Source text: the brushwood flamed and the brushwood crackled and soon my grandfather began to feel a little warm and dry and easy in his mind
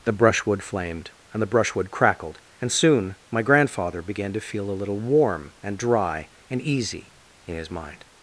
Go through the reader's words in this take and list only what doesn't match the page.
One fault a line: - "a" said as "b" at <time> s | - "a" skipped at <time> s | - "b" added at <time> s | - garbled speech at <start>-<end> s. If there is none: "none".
none